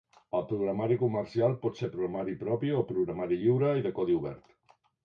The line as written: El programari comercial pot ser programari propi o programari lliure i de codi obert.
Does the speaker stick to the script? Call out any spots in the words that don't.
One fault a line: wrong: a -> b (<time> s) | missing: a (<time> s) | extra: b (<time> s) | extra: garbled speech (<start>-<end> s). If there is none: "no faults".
no faults